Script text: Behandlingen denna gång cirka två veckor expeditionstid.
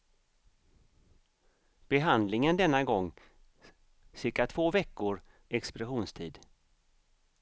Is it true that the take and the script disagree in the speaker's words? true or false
false